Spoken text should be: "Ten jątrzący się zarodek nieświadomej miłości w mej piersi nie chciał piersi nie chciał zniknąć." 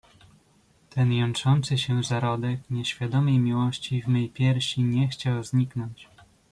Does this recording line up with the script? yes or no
no